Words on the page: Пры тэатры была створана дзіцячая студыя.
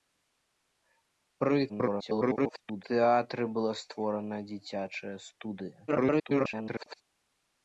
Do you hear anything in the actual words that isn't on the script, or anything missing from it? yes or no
yes